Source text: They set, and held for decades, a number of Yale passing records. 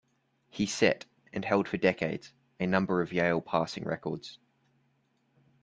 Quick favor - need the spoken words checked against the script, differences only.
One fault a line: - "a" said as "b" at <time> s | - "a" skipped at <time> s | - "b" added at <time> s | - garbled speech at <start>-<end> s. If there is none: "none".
- "They" said as "He" at 0.5 s